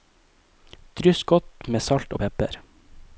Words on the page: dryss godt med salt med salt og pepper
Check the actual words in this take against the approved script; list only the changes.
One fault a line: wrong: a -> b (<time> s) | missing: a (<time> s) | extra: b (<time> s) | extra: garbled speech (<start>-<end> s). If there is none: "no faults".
missing: med salt (2.1 s)